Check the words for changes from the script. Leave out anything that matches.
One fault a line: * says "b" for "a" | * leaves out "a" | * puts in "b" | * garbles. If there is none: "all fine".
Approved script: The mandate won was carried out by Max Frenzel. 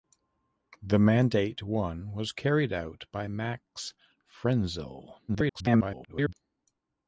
* garbles